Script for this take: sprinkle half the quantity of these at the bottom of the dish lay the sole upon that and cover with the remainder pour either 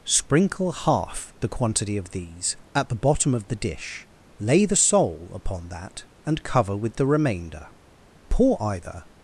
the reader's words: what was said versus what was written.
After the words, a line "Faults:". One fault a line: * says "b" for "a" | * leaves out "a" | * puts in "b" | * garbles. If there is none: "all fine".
sprinkle half the quantity of these at the bottom of the dish lay the sole upon that and cover with the remainder pour either
Faults:
all fine